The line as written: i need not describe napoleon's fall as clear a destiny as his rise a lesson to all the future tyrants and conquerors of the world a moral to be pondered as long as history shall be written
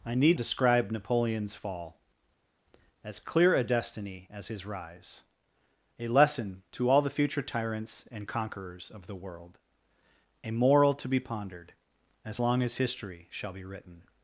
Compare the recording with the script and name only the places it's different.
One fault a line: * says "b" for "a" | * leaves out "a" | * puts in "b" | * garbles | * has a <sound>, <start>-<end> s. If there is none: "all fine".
* leaves out "not"